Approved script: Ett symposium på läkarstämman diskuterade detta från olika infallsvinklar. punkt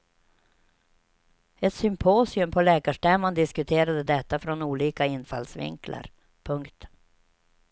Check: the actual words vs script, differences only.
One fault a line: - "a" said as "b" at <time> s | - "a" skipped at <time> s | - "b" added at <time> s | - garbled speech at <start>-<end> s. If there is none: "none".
none